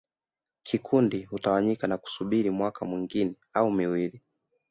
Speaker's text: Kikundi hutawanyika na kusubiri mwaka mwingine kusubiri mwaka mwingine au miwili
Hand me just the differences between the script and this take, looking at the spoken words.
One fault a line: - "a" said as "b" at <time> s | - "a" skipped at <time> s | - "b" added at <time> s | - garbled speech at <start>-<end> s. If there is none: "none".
- "kusubiri mwaka mwingine" skipped at 3.4 s